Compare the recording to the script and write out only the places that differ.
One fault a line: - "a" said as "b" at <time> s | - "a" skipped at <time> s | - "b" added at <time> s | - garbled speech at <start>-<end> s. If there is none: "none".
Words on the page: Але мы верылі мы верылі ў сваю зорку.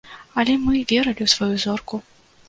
- "мы верылі" skipped at 1.2 s